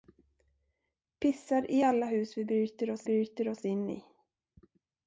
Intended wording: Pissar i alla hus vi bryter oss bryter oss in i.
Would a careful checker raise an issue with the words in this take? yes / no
no